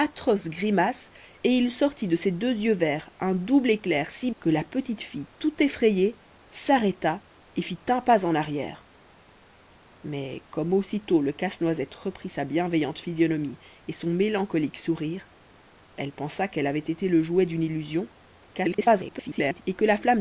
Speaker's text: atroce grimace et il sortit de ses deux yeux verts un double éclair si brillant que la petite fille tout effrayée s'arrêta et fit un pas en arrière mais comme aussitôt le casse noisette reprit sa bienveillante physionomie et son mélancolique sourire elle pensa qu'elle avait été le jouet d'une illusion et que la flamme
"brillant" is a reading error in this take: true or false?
true